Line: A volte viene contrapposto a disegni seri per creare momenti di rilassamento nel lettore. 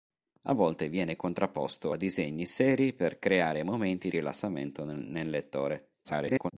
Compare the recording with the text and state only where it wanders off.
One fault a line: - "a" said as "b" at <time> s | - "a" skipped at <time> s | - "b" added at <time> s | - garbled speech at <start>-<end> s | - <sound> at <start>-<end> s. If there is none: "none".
- "di" skipped at 4.1 s
- garbled speech at 6.0-6.5 s